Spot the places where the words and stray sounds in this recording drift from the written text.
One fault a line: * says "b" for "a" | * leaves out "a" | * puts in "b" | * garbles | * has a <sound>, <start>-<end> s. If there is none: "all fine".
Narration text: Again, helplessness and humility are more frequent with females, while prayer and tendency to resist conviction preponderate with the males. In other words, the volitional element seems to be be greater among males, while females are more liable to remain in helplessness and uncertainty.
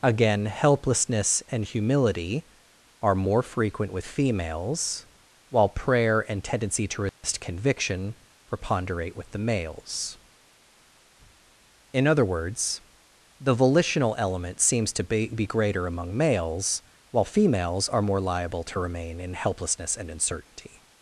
* has a dropout, 7.1-7.2 s